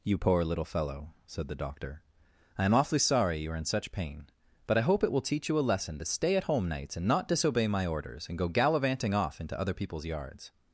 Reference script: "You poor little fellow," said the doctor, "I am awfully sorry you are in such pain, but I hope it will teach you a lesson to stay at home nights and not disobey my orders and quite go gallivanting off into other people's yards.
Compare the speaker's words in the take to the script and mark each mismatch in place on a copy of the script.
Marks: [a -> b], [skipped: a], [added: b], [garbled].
"You poor little fellow," said the doctor, "I am awfully sorry you are in such pain, but I hope it will teach you a lesson to stay at home nights and not disobey my orders and [skipped: quite] go gallivanting off into other people's yards.